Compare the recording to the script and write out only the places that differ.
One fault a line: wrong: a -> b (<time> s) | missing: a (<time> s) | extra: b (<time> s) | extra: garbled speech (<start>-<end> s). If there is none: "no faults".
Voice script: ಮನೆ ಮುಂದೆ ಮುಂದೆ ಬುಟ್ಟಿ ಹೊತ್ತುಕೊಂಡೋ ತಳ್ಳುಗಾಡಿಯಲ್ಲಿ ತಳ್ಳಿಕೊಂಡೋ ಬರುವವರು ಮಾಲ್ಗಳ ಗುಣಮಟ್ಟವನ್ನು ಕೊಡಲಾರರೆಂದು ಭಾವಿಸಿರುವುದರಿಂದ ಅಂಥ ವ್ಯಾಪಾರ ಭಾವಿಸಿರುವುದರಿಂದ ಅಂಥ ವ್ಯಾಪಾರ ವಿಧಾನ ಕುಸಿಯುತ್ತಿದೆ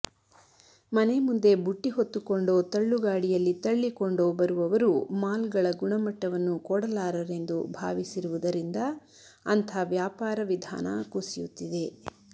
missing: ಮುಂದೆ (1.5 s)
missing: ಭಾವಿಸಿರುವುದರಿಂದ ಅಂಥ ವ್ಯಾಪಾರ (10.4 s)